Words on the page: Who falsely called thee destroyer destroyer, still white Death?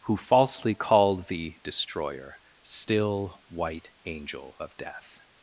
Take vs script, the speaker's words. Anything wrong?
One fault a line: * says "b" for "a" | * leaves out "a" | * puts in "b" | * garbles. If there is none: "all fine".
* leaves out "destroyer"
* puts in "Angel of"